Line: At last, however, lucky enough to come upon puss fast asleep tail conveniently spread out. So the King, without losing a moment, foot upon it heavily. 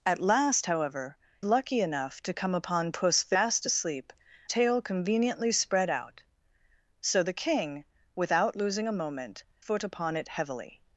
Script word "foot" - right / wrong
right